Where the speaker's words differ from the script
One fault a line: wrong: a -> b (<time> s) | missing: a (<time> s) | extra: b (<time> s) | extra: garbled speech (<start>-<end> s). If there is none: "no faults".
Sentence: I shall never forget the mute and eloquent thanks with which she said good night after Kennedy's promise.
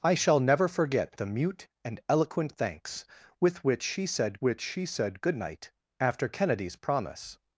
extra: which she said (4.4 s)